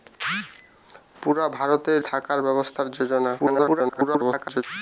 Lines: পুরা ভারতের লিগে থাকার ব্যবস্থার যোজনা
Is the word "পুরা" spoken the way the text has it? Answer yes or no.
yes